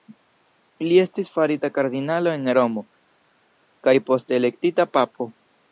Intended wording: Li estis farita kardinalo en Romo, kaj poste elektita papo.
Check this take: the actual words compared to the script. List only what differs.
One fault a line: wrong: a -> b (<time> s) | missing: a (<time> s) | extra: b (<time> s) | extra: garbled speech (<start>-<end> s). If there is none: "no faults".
no faults